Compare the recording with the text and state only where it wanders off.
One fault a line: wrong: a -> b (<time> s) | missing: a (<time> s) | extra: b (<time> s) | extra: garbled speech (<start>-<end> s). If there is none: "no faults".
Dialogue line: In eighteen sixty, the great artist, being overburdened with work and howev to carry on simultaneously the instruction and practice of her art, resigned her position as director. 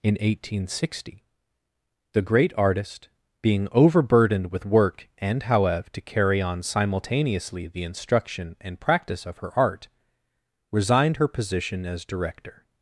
no faults